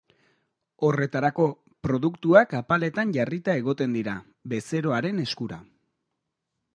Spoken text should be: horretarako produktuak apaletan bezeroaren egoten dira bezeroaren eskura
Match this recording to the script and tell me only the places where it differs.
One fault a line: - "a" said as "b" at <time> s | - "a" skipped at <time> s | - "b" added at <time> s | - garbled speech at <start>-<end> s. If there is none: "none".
- "bezeroaren" said as "jarrita" at 3.2 s